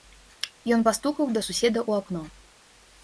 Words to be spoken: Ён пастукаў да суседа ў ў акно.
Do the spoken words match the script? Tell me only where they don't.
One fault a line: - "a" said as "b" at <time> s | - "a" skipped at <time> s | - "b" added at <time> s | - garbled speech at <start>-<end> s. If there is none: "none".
- "ў" skipped at 2.0 s